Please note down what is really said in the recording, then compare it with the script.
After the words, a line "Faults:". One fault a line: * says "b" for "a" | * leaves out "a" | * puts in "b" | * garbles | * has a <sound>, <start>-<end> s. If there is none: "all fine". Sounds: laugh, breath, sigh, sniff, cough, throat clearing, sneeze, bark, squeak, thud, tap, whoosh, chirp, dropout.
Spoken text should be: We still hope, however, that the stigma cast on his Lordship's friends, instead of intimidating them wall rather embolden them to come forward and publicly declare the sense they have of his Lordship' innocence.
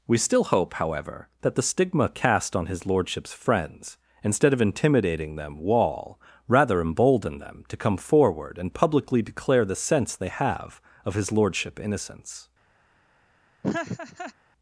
We still hope, however, that the stigma cast on his Lordship's friends, instead of intimidating them wall rather embolden them to come forward and publicly declare the sense they have of his Lordship' innocence.
Faults:
* has a laugh, 13.6-14.3 s